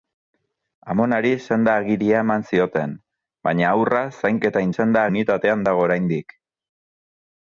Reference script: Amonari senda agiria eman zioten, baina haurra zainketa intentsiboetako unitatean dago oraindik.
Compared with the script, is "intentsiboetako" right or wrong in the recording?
wrong